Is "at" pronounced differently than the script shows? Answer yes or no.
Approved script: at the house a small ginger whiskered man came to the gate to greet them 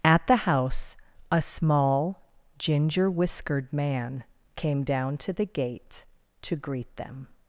no